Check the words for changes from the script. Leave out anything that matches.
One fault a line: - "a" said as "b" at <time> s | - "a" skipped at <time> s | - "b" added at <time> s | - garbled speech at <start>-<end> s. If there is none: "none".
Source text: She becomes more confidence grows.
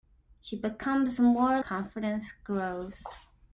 none